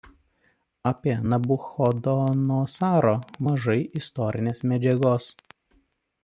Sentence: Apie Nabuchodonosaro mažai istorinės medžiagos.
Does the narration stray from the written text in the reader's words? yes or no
no